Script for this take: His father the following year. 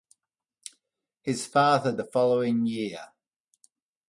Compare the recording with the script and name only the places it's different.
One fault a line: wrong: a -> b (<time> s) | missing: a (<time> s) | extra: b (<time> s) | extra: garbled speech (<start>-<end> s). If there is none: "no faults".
no faults